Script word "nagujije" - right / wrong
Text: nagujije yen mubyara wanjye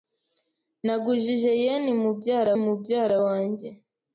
right